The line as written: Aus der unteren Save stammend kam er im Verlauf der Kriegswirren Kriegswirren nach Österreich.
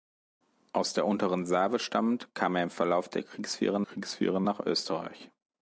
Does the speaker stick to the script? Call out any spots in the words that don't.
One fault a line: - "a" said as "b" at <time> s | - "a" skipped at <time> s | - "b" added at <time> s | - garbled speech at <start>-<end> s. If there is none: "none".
none